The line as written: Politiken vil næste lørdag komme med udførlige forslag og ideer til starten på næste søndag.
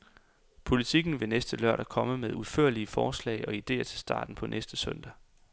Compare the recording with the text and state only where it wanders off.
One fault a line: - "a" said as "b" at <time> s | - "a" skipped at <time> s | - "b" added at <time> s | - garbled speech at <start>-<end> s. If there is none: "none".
none